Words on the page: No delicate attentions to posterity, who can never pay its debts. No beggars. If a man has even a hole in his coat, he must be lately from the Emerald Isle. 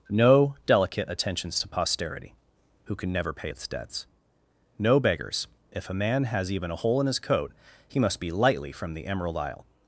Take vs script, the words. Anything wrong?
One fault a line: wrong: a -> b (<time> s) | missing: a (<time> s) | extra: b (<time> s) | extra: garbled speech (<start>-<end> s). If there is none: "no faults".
wrong: lately -> lightly (8.3 s)